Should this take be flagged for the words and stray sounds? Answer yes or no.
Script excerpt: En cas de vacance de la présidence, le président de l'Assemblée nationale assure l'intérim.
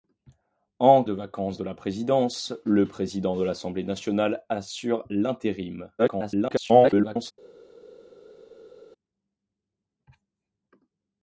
yes